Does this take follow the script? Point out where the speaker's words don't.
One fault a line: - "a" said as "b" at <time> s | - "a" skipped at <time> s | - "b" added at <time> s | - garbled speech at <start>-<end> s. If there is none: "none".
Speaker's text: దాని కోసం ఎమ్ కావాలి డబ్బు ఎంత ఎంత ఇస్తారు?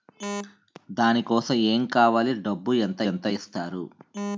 none